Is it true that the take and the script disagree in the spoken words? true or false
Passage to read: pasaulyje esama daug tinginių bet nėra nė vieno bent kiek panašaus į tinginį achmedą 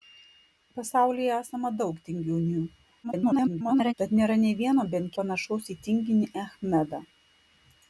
true